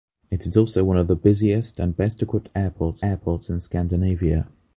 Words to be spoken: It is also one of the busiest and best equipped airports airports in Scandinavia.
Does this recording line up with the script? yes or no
yes